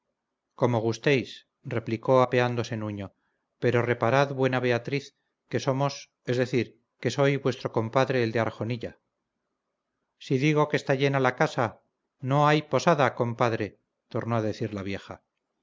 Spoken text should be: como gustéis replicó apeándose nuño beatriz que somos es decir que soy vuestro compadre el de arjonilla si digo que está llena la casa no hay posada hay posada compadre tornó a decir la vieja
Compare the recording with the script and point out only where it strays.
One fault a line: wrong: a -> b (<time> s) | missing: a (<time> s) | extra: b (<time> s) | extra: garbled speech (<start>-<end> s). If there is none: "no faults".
extra: pero reparad buena (3.6 s)
missing: hay posada (13.1 s)